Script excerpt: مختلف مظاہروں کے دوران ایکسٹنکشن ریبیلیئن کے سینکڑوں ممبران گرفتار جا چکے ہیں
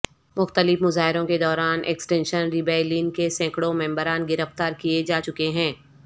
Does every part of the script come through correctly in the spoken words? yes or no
no